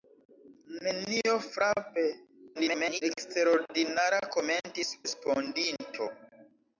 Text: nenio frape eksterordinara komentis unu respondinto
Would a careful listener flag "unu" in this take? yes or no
yes